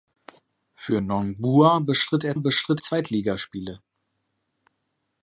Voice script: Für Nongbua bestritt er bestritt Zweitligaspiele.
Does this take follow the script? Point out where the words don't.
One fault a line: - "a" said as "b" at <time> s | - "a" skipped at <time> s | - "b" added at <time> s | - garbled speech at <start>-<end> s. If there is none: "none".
none